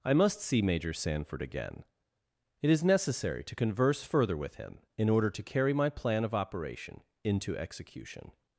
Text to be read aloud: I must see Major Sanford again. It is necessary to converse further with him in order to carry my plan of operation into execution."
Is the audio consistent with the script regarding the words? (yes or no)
yes